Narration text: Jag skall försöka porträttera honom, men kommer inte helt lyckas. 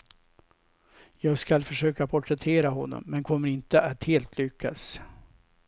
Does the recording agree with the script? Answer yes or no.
no